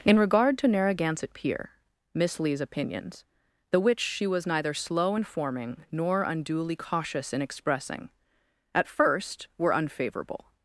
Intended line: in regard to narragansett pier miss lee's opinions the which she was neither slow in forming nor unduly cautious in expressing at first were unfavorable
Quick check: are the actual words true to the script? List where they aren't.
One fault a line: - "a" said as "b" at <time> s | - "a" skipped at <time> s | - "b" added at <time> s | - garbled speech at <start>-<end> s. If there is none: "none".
none